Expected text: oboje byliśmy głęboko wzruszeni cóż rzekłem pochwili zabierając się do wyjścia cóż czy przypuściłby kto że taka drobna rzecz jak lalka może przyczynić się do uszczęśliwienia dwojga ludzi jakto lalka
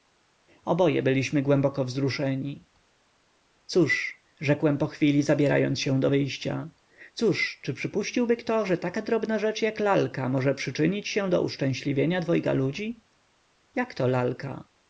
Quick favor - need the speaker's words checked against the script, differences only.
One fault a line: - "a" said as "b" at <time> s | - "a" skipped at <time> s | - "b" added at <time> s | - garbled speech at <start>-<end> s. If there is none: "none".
none